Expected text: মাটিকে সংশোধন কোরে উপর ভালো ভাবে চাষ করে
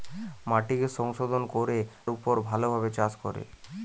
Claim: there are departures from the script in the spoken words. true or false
false